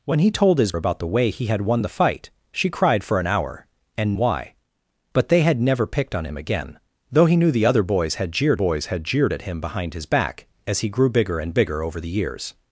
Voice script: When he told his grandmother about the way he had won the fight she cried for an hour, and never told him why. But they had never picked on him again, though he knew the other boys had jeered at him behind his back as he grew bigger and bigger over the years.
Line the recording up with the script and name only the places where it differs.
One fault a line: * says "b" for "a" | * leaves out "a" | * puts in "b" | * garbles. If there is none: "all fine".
* leaves out "grandmother"
* leaves out "never told him"
* puts in "boys had jeered"